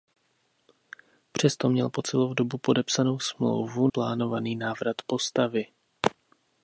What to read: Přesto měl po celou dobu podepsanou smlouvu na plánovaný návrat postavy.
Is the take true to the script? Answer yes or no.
no